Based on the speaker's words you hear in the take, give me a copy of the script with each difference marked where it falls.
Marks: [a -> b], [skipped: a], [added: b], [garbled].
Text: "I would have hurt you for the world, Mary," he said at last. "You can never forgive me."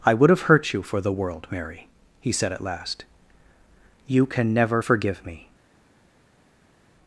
"I would have hurt you for the world, Mary," he said at last. "You can never forgive me."